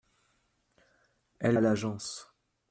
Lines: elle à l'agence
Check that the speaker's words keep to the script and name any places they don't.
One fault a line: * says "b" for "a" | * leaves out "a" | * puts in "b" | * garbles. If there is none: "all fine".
all fine